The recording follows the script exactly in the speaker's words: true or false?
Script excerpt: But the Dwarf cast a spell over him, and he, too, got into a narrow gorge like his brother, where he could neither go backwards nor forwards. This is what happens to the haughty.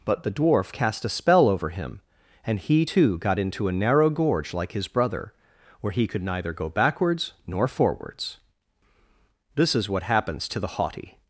true